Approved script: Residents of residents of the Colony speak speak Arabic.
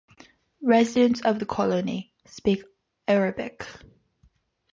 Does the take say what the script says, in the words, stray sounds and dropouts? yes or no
no